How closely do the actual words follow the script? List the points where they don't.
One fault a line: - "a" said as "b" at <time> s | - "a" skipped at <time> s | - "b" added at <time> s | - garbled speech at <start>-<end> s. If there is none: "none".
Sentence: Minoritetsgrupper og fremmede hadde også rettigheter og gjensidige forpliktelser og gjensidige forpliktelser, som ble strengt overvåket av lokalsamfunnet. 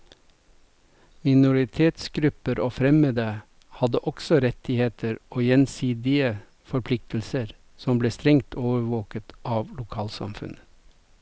- "og gjensidige forpliktelser" skipped at 7.5 s